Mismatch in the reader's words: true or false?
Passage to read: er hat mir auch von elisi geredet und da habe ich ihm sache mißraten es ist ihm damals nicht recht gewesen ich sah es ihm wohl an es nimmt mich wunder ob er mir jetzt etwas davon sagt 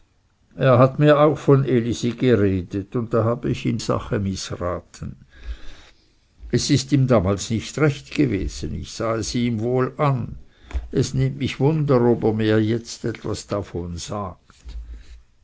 false